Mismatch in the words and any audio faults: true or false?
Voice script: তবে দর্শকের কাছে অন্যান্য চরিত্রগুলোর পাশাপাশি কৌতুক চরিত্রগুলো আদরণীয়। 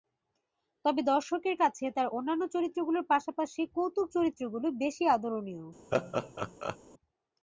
true